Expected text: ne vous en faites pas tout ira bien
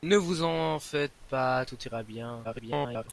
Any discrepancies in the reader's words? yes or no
yes